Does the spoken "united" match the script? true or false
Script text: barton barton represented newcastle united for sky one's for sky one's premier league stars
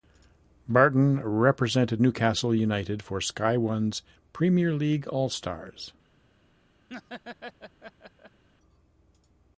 true